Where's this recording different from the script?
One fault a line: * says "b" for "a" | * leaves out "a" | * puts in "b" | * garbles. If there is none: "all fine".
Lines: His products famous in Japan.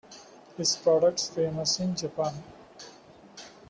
all fine